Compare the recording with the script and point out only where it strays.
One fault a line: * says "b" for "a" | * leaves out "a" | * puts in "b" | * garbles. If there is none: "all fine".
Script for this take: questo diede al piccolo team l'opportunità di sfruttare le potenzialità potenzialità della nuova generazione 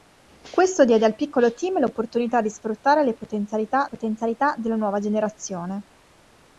all fine